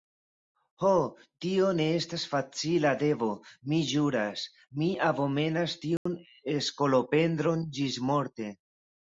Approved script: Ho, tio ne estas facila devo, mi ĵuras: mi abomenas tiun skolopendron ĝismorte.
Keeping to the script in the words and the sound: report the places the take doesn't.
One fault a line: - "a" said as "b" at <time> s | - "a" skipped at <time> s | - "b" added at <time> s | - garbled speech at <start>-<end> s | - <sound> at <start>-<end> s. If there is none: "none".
- dropout at 6.0-6.1 s